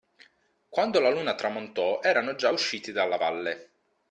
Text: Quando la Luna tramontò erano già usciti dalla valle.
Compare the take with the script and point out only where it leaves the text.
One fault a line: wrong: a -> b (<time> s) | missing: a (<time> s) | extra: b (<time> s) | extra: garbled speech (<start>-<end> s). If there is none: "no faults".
no faults